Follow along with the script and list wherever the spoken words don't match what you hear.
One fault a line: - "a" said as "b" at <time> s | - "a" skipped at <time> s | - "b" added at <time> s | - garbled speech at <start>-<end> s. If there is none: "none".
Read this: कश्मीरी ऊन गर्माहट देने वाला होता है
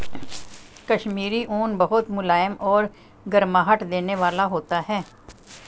- "बहुत मुलायम और" added at 1.8 s